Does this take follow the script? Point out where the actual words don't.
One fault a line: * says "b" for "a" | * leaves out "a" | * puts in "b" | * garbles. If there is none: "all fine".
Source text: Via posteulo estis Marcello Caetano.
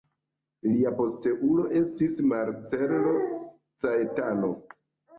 * says "Lia" for "Via"